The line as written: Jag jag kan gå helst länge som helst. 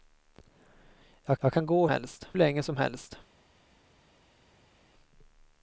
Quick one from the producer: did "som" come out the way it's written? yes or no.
yes